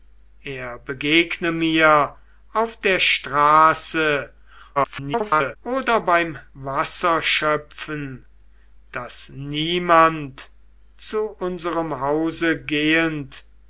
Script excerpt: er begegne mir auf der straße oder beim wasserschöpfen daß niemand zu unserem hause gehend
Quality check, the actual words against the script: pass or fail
fail